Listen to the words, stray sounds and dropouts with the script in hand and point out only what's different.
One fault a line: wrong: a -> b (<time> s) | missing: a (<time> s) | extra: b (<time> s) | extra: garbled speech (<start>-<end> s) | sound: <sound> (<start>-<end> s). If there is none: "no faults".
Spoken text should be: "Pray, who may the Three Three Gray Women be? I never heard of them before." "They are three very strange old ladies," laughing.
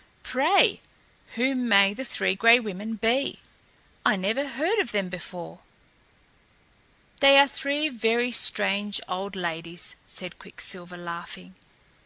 missing: Three (2.3 s)
extra: said Quicksilver (10.1 s)